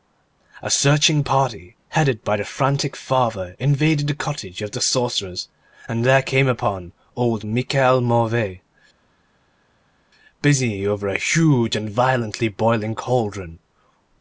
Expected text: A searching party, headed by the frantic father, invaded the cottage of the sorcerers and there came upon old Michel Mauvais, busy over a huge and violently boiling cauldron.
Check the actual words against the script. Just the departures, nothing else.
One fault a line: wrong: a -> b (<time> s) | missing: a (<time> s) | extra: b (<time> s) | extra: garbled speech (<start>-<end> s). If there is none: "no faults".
no faults